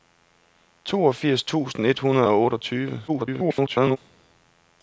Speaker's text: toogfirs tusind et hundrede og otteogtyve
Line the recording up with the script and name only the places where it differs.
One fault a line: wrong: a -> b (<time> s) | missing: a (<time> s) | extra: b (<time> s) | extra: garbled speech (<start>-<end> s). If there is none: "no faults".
extra: garbled speech (3.1-4.0 s)